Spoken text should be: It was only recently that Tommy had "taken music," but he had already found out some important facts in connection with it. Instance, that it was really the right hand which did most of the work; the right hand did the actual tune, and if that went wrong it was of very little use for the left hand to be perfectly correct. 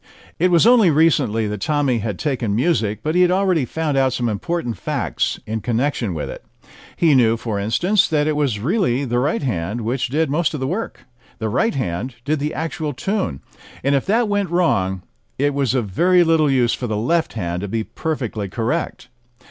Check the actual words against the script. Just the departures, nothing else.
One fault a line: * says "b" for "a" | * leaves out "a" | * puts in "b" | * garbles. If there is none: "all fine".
* puts in "He knew for"